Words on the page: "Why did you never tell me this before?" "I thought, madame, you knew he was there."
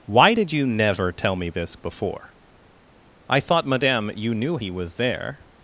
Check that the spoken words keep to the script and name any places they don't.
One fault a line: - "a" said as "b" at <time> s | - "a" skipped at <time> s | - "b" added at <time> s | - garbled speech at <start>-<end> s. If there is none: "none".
none